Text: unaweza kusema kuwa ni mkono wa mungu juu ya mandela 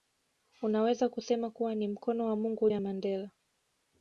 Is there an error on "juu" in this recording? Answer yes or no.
yes